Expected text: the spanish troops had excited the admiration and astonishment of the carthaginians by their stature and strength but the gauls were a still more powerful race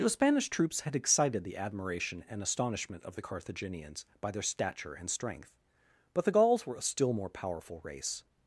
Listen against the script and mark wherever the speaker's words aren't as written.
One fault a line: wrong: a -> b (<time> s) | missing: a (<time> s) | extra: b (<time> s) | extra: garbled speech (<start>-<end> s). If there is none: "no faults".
no faults